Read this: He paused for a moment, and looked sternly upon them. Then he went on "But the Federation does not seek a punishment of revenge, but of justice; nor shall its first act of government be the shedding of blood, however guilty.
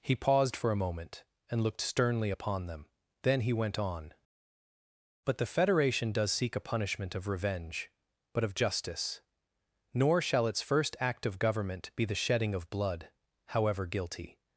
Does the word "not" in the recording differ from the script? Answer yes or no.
yes